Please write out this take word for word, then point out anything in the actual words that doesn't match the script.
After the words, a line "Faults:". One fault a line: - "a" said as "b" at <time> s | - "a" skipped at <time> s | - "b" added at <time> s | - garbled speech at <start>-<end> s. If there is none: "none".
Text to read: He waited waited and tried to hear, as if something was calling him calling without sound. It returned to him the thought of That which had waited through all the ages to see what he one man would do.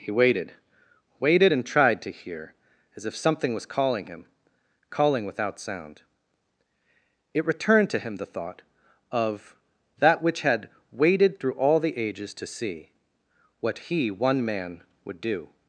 He waited waited and tried to hear, as if something was calling him calling without sound. It returned to him the thought of That which had waited through all the ages to see what he one man would do.
Faults:
none